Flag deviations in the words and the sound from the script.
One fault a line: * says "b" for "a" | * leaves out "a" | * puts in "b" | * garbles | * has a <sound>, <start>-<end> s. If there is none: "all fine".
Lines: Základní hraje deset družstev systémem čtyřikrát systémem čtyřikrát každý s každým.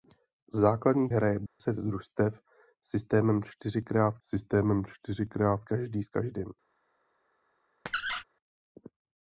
* has a dropout, 1.5-1.6 s
* has a squeak, 7.9-8.2 s